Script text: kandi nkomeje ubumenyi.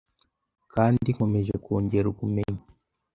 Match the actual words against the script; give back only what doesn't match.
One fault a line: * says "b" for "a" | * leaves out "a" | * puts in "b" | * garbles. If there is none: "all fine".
* puts in "kongera"